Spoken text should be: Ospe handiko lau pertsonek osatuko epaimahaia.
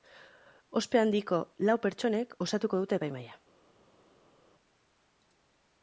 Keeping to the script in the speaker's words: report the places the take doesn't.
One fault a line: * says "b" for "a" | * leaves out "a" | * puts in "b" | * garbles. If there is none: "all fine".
* puts in "dute"